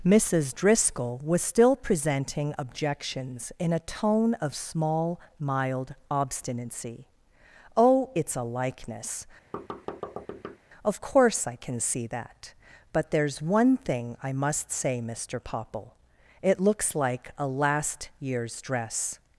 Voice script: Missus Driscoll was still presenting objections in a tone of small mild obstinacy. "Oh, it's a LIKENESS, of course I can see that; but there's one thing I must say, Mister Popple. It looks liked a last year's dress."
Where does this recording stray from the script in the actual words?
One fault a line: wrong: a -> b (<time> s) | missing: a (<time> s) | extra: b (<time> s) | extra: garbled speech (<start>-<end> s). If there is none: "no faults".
wrong: liked -> like (17.0 s)